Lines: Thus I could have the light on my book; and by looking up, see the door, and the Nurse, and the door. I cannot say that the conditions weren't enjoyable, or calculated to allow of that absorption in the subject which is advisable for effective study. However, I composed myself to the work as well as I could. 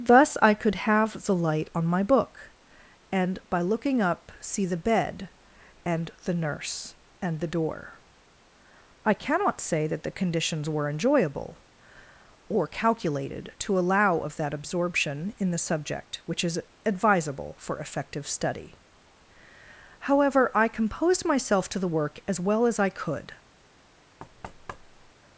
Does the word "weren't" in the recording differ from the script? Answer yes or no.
yes